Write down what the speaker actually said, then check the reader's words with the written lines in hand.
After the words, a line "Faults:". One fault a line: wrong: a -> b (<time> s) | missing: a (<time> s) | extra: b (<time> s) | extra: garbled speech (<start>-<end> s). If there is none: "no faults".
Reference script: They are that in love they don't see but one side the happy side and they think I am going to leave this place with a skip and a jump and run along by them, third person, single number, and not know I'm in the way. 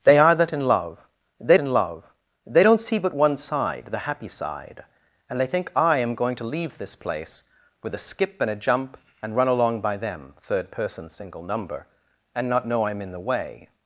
They are that in love they in love they don't see but one side the happy side and they think I am going to leave this place with a skip and a jump and run along by them, third person, single number, and not know I'm in the way.
Faults:
extra: in love they (1.6 s)